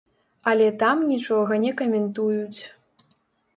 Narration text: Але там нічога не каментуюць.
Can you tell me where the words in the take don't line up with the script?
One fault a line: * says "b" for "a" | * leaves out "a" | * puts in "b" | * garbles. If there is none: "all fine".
all fine